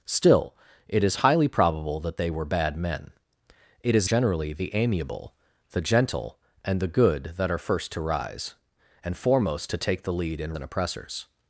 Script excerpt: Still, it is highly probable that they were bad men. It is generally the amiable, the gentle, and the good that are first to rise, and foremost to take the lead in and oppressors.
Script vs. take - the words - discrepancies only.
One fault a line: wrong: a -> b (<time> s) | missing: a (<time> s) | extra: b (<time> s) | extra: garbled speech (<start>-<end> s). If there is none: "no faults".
no faults